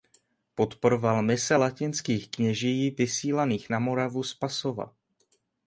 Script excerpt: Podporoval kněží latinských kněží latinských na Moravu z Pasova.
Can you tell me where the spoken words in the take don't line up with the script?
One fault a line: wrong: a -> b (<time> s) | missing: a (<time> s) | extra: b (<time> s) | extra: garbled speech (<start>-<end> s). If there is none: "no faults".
wrong: kněží -> mise (1.2 s)
wrong: latinských -> vysílaných (2.9 s)